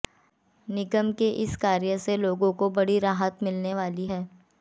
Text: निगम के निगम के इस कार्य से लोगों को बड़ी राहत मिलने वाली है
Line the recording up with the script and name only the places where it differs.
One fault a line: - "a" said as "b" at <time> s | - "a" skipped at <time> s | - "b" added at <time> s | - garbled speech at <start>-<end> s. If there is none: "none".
- "निगम के" skipped at 1.3 s